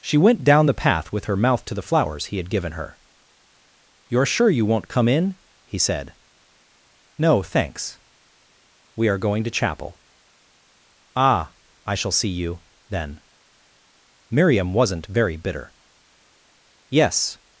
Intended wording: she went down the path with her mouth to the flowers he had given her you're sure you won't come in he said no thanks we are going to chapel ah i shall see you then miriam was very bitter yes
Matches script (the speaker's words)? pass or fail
fail